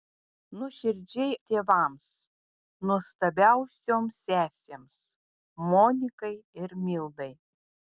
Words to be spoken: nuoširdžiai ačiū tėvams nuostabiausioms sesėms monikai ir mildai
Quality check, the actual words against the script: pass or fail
fail